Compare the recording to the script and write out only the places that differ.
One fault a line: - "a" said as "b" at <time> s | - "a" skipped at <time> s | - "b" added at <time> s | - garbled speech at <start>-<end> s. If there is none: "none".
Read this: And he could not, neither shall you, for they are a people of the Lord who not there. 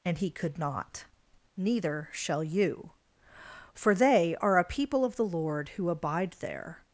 - "not" said as "abide" at 5.9 s